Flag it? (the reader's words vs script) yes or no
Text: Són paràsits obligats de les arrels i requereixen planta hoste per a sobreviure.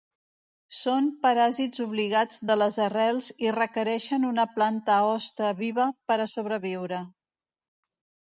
yes